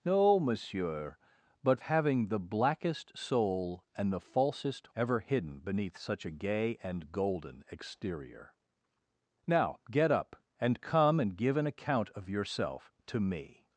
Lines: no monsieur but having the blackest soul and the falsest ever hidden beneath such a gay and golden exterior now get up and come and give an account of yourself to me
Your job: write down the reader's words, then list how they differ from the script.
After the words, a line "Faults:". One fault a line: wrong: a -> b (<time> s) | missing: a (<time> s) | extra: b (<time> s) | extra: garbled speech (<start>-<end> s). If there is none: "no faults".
no monsieur but having the blackest soul and the falsest ever hidden beneath such a gay and golden exterior now get up and come and give an account of yourself to me
Faults:
no faults